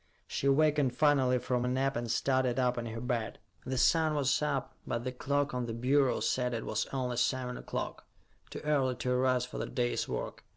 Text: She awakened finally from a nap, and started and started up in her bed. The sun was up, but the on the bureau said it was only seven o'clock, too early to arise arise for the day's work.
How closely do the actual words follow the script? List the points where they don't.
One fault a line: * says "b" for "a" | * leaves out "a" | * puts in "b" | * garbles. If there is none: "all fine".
* leaves out "and started"
* puts in "clock"
* leaves out "arise"